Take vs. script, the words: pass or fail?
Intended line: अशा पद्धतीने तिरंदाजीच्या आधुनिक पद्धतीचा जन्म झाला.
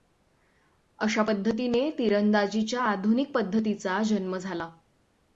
pass